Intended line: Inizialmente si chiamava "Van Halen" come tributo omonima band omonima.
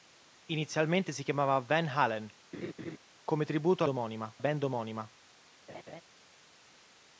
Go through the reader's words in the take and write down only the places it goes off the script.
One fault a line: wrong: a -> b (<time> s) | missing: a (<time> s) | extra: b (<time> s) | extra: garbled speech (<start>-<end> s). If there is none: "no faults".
no faults